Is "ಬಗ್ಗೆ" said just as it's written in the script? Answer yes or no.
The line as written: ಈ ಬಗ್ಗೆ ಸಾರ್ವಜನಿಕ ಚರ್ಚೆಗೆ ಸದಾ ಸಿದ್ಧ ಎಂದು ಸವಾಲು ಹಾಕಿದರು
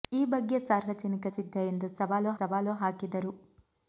yes